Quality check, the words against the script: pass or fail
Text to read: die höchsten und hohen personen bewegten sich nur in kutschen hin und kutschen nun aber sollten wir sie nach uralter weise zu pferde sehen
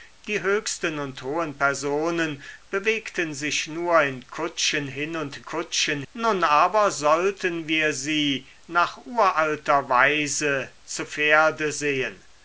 pass